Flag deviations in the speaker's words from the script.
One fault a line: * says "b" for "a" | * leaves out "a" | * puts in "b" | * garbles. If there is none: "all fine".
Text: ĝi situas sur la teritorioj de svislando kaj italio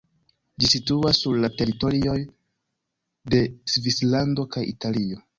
all fine